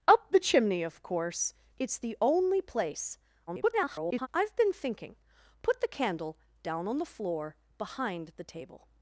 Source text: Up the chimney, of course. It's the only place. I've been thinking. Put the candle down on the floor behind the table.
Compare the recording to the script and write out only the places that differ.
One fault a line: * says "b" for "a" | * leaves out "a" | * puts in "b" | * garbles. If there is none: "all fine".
* garbles